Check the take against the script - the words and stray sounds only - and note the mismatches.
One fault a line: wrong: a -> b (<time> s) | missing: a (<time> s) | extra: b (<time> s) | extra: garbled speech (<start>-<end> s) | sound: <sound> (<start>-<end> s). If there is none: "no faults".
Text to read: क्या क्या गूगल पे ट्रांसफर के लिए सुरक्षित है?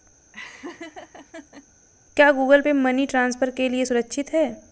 sound: laugh (0.3-1.7 s)
missing: क्या (2.3 s)
extra: मनी (2.7 s)